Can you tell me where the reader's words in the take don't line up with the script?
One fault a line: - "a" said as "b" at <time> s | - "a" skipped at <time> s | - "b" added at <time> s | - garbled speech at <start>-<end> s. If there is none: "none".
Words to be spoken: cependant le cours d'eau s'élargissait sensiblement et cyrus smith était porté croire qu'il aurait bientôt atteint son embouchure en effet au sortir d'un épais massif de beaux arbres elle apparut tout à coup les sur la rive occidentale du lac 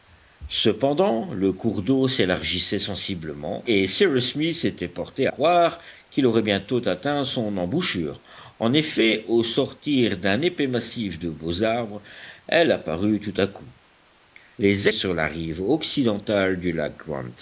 none